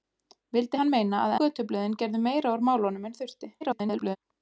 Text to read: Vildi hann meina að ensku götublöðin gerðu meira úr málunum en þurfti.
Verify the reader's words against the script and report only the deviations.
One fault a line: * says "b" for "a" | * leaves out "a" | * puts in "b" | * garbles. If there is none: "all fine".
* leaves out "ensku"
* garbles